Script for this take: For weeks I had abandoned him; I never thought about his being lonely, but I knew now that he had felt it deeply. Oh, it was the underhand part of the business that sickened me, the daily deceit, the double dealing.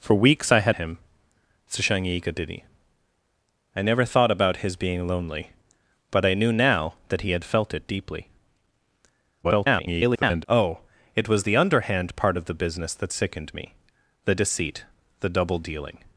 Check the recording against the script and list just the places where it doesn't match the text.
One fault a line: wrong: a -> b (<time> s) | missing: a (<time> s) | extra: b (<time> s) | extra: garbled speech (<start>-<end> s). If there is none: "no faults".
missing: abandoned (0.8 s)
extra: garbled speech (9.4-10.4 s)
missing: daily (14.3 s)